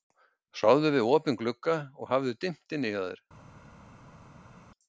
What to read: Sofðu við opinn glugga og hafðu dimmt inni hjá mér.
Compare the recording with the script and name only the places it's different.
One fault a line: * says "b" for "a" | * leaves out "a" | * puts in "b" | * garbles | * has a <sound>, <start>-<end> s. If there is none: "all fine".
* says "þér" for "mér"